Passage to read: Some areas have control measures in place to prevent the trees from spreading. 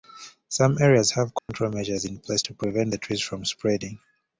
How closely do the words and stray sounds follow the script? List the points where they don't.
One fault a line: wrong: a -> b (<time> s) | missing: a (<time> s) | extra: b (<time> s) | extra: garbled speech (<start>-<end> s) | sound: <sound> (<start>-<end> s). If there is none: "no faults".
sound: dropout (1.4-1.5 s)